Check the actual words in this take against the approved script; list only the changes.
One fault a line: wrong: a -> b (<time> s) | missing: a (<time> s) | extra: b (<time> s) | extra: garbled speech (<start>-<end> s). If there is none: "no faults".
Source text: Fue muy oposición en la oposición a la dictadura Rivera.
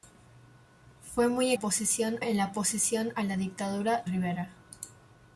no faults